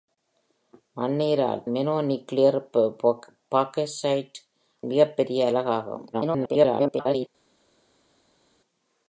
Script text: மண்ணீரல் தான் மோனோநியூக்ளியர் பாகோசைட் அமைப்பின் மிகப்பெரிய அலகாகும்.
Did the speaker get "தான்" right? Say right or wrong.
wrong